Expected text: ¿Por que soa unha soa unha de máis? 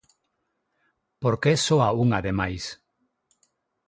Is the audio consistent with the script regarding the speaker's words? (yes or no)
no